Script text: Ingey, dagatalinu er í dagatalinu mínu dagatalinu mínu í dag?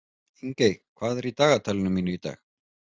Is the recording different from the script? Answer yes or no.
yes